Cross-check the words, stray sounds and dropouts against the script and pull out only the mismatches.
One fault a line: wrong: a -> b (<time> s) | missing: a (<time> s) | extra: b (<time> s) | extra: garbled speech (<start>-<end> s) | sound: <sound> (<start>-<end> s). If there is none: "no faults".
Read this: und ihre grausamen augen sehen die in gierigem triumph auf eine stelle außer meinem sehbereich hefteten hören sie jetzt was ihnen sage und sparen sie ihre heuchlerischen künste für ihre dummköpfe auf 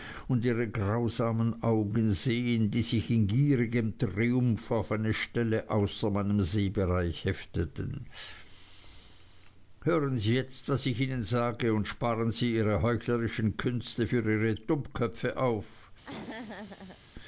extra: sich (2.8 s)
extra: ich (10.9 s)
sound: laugh (16.0-17.0 s)